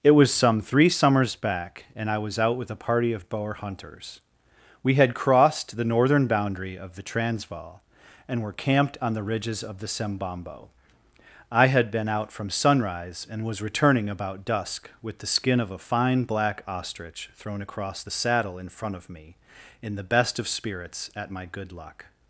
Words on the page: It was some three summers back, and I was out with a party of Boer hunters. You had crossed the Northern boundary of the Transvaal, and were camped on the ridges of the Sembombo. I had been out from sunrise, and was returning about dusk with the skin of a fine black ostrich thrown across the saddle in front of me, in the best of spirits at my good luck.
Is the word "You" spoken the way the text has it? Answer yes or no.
no